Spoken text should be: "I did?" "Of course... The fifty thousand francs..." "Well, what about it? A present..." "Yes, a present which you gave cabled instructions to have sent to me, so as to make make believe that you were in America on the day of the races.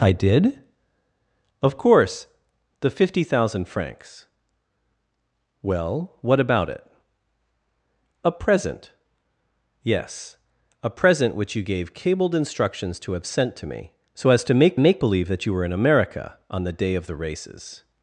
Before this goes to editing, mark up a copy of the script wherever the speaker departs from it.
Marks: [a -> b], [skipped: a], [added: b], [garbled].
"I did?" "Of course... The fifty thousand francs..." "Well, what about it? A present..." "Yes, a present which you gave cabled instructions to have sent to me, so as to make make believe that you were in America on the day of the races.